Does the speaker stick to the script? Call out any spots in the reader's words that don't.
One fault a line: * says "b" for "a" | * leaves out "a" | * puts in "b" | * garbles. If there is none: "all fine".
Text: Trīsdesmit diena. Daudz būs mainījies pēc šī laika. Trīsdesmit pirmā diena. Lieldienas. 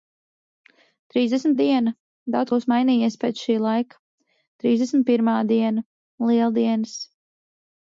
all fine